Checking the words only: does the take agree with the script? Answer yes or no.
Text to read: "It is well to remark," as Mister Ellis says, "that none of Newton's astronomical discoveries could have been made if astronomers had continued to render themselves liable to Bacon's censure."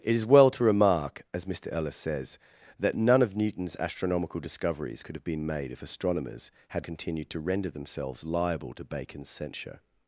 yes